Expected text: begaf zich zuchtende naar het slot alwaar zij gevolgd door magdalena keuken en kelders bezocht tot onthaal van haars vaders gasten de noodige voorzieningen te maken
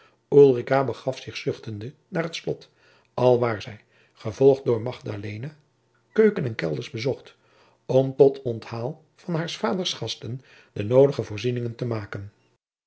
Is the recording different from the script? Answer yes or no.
yes